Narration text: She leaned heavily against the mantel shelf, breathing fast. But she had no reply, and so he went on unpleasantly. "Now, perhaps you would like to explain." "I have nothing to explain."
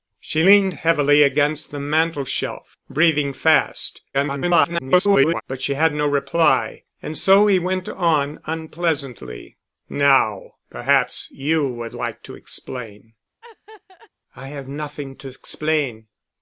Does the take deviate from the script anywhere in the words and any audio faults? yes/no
yes